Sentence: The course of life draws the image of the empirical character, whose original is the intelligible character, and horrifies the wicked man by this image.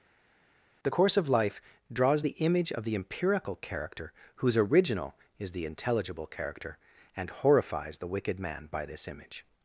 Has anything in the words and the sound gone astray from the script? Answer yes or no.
no